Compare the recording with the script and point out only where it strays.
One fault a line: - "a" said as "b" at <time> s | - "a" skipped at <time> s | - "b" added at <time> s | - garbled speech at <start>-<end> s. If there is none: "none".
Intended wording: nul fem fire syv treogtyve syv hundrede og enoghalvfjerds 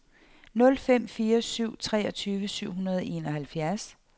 none